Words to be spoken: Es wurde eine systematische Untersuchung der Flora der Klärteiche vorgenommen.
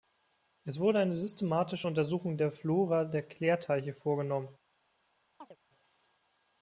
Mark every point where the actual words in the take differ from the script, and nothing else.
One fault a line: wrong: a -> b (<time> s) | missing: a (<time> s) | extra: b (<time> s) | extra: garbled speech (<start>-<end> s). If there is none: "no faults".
no faults